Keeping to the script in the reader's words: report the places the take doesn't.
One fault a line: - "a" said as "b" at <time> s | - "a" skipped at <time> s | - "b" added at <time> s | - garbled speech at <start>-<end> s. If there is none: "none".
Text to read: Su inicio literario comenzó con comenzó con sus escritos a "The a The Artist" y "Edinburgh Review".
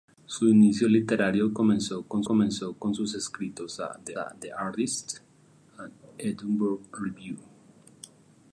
none